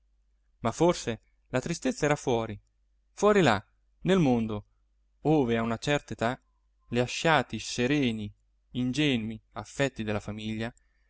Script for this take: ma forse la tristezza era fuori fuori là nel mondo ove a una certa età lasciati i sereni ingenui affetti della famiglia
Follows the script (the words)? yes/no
yes